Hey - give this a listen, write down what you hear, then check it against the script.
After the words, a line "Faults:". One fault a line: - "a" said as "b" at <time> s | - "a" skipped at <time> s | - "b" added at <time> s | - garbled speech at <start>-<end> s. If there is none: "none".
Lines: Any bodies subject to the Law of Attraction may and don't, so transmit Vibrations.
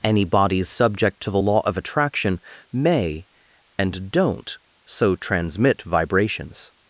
Any bodies subject to the Law of Attraction may and don't, so transmit Vibrations.
Faults:
none